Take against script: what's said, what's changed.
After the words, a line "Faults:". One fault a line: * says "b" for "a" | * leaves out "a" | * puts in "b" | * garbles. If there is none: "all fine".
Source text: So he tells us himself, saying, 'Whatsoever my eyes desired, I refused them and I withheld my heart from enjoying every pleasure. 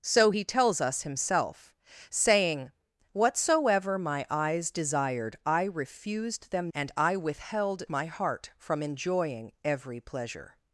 So he tells us himself, saying, 'Whatsoever my eyes desired, I refused them and I withheld my heart from enjoying every pleasure.
Faults:
all fine